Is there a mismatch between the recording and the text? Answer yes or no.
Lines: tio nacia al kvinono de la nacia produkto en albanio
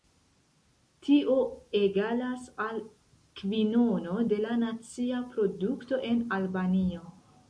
yes